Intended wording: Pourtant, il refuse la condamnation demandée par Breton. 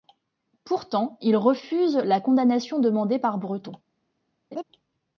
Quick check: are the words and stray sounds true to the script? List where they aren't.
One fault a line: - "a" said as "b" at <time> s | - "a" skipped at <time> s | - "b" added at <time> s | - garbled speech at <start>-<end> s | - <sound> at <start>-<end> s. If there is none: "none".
- laugh at 4.5-4.6 s